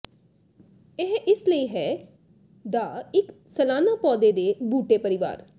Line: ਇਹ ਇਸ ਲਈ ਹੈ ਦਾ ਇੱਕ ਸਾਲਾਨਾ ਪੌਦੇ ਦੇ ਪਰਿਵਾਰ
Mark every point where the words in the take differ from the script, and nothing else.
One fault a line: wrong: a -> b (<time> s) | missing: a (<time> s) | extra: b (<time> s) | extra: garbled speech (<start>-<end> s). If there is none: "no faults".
extra: ਬੂਟੇ (4.6 s)